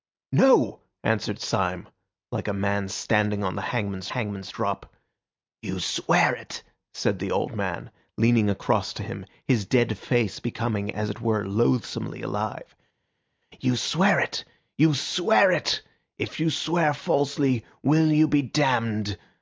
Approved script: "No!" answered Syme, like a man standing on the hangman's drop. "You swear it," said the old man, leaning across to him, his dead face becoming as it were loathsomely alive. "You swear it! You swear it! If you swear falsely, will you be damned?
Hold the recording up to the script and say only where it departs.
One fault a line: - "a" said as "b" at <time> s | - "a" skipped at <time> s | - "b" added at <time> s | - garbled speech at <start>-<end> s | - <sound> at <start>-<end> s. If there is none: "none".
- "hangman's" added at 4.1 s